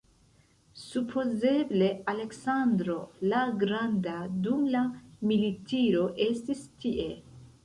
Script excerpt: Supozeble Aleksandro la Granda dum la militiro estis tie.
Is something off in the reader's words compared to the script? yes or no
no